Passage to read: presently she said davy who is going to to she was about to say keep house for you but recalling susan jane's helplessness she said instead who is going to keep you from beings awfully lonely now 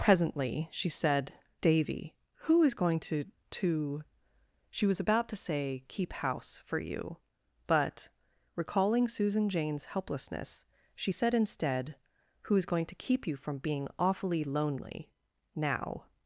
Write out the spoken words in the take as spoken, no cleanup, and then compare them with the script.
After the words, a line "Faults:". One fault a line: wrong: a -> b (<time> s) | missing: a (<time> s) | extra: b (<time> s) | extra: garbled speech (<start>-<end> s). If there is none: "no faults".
presently she said davy who is going to to she was about to say keep house for you but recalling susan jane's helplessness she said instead who is going to keep you from being awfully lonely now
Faults:
wrong: beings -> being (13.6 s)